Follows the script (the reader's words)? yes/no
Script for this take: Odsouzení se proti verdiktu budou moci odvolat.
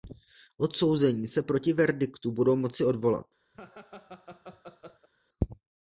yes